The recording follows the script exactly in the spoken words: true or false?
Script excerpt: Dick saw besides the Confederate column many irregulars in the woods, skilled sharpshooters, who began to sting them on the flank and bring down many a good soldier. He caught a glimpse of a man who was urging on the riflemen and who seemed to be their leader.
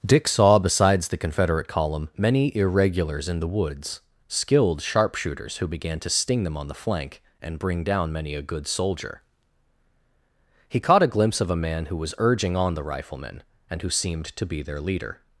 true